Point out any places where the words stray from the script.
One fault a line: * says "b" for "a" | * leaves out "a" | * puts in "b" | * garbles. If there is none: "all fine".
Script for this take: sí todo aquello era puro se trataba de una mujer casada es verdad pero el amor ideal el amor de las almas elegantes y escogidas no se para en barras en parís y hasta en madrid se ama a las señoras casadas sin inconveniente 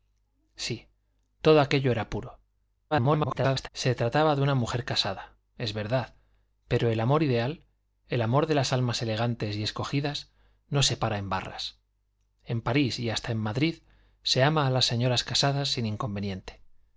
* garbles